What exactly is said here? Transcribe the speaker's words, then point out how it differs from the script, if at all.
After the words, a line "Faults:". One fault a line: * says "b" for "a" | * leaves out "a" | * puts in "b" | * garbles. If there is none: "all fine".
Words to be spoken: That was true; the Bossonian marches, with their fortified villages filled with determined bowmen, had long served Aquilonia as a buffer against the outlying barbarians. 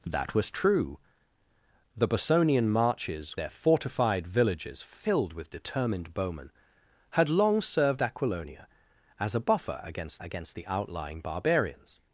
That was true; the Bossonian marches, their fortified villages filled with determined bowmen, had long served Aquilonia as a buffer against against the outlying barbarians.
Faults:
* leaves out "with"
* puts in "against"